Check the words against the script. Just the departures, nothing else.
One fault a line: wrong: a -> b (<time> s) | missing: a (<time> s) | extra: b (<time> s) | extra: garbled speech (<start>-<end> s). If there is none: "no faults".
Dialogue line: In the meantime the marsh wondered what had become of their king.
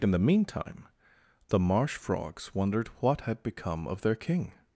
extra: frogs (1.9 s)